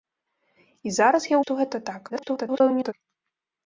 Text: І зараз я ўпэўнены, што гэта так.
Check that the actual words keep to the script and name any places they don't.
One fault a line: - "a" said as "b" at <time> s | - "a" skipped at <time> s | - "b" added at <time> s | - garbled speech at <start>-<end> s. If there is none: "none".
- "ўпэўнены" skipped at 1.4 s
- garbled speech at 2.1-2.9 s